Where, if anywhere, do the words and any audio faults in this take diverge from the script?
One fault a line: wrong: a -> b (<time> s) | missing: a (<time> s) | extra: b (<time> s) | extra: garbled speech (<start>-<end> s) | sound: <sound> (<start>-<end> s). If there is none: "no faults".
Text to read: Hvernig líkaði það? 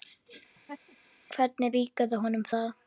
sound: laugh (0.5-1.0 s)
extra: honum (2.3 s)